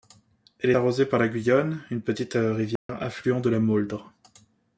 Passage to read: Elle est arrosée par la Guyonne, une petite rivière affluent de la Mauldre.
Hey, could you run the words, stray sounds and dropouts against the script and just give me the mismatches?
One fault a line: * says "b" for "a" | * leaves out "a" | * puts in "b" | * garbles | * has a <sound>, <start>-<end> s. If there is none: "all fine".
* leaves out "est"
* has a dropout, 2.8-2.9 s